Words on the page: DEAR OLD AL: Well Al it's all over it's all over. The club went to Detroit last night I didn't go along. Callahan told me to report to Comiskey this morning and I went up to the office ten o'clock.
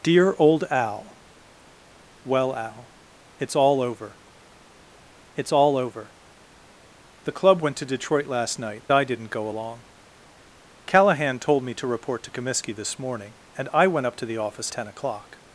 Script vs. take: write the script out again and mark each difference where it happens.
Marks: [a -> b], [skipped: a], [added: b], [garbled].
DEAR OLD AL: Well Al it's all over it's all over. The club went to Detroit last night I didn't go along. Callahan told me to report to Comiskey this morning and I went up to the office ten o'clock.